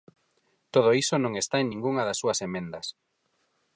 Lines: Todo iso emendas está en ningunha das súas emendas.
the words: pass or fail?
fail